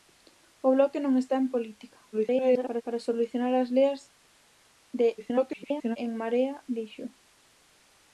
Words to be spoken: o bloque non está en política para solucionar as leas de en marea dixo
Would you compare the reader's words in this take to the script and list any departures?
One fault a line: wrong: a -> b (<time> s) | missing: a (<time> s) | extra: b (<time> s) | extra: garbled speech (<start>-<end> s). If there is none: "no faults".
extra: garbled speech (2.1-2.8 s)
extra: garbled speech (5.2-6.0 s)